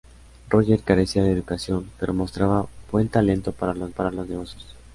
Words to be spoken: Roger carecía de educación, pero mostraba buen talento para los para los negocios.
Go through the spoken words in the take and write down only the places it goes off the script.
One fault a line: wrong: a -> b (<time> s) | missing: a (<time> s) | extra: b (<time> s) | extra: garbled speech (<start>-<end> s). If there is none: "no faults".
no faults